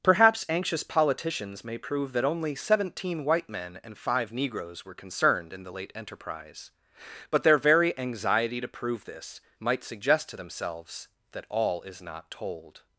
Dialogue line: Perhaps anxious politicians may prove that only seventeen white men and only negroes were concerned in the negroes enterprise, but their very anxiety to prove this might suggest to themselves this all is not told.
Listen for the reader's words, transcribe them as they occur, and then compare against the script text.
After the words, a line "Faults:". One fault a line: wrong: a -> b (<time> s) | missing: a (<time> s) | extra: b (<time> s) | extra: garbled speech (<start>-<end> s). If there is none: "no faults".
Perhaps anxious politicians may prove that only seventeen white men and five negroes were concerned in the late enterprise, but their very anxiety to prove this might suggest to themselves that all is not told.
Faults:
wrong: only -> five (4.0 s)
wrong: negroes -> late (5.7 s)
wrong: this -> that (11.3 s)